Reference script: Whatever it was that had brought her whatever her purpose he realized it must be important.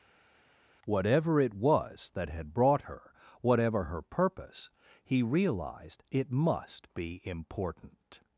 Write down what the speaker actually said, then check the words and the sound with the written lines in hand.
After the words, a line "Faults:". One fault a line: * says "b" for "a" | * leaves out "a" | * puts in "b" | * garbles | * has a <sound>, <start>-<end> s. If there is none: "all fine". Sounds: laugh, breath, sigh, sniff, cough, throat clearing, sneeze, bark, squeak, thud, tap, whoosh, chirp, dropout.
Whatever it was that had brought her whatever her purpose he realized it must be important.
Faults:
all fine